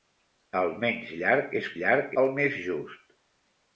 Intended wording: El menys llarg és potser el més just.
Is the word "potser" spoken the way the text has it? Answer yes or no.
no